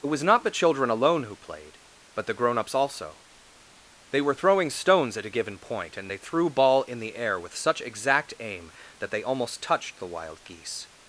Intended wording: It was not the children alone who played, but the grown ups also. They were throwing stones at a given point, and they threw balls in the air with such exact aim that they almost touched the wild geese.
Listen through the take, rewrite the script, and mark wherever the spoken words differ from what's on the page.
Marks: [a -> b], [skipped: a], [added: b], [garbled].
It was not the children alone who played, but the grown ups also. They were throwing stones at a given point, and they threw [balls -> ball] in the air with such exact aim that they almost touched the wild geese.